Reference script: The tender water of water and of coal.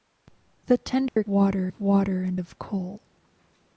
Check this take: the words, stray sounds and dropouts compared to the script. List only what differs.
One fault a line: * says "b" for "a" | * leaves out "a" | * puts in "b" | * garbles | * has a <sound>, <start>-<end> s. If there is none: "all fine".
* has a dropout, 1.1-1.2 s